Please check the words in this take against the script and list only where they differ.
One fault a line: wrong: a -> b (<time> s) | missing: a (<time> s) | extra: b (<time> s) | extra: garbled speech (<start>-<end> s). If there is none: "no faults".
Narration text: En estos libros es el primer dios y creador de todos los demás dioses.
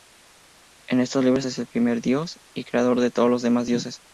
no faults